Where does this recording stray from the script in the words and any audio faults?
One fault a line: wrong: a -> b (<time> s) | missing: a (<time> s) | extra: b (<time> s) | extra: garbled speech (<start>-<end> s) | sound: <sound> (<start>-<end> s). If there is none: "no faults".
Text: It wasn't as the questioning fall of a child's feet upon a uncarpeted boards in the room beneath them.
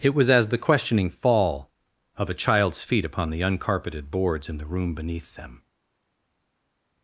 wrong: wasn't -> was (0.1 s)
wrong: a -> the (3.3 s)